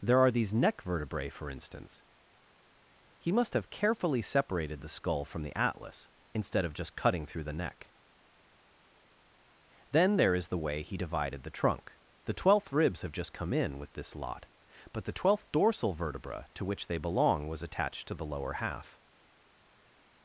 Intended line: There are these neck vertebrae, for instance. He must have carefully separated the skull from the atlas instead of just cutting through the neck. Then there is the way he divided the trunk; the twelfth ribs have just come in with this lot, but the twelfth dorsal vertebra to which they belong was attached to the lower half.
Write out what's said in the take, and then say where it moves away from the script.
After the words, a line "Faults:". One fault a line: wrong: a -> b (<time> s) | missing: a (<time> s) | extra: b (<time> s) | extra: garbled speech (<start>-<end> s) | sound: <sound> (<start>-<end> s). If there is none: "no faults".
There are these neck vertebrae, for instance. He must have carefully separated the skull from the atlas instead of just cutting through the neck. Then there is the way he divided the trunk; the twelfth ribs have just come in with this lot, but the twelfth dorsal vertebra to which they belong was attached to the lower half.
Faults:
no faults